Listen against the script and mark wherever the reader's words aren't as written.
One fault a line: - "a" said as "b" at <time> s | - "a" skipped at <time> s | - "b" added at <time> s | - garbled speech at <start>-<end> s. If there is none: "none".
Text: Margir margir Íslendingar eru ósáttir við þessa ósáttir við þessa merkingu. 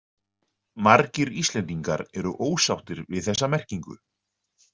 - "margir" skipped at 1.3 s
- "ósáttir við þessa" skipped at 3.5 s